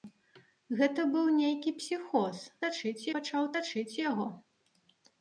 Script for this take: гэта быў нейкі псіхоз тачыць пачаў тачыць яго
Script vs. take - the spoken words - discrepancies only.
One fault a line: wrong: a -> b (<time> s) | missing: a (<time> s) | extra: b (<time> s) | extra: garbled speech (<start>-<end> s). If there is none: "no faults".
no faults